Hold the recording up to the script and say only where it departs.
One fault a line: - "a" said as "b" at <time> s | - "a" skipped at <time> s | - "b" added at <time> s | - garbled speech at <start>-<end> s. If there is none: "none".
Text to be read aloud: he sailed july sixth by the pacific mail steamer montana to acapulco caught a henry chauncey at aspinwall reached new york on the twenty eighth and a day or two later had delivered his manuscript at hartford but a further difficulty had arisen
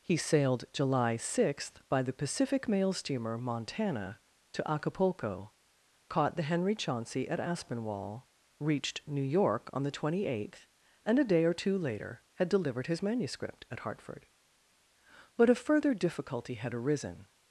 - "a" said as "the" at 6.3 s